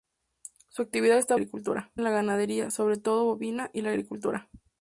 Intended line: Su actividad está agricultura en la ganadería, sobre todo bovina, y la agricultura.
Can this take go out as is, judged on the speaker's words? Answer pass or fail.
pass